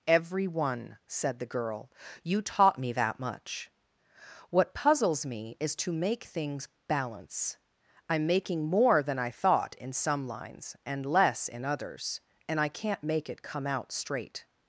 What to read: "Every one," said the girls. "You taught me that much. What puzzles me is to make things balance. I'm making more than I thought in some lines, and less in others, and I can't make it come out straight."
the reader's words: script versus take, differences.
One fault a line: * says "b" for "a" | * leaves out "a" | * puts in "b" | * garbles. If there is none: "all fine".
* says "girl" for "girls"